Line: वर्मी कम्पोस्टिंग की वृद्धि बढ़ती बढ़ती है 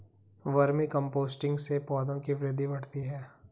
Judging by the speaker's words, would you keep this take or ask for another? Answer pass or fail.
fail